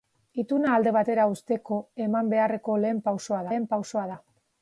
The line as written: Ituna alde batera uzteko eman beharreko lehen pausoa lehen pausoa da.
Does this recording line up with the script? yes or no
yes